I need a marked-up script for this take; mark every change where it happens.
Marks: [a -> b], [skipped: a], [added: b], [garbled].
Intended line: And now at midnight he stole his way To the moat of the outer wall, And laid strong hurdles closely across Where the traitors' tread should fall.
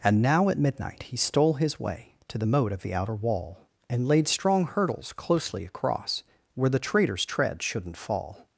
And now at midnight he stole his way To the moat of the outer wall, And laid strong hurdles closely across Where the traitors' tread [should -> shouldn't] fall.